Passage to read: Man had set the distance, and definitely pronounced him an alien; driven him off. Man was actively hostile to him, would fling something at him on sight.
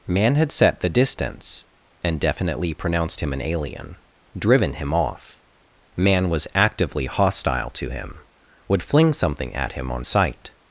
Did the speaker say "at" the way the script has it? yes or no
yes